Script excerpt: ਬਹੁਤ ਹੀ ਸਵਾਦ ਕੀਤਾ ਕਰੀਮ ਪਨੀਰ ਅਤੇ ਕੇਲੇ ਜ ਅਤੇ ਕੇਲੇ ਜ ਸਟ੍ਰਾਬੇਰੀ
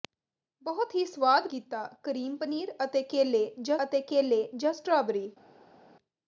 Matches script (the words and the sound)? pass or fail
pass